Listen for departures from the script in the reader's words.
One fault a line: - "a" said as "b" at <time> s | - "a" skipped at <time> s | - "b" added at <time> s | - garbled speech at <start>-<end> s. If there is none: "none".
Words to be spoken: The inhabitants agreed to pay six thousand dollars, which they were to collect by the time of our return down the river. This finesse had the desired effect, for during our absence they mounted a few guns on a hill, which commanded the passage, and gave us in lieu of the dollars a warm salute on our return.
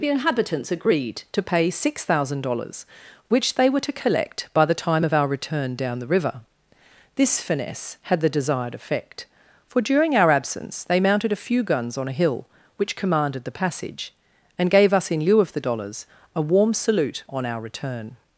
none